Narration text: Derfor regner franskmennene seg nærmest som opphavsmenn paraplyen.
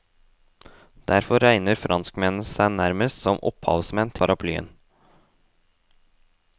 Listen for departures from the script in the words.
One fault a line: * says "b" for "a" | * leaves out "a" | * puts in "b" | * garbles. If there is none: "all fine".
all fine